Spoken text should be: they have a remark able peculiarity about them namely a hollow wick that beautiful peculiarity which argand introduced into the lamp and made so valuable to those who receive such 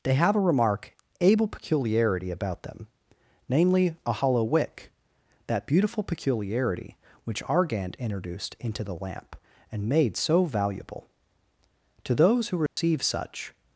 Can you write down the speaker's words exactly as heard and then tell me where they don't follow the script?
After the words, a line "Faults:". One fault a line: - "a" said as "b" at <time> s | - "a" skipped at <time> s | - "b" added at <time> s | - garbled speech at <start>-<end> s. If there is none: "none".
they have a remark able peculiarity about them namely a hollow wick that beautiful peculiarity which argand introduced into the lamp and made so valuable to those who receive such
Faults:
none